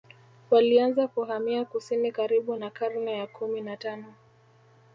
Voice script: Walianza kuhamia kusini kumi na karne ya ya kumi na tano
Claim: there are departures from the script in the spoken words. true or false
true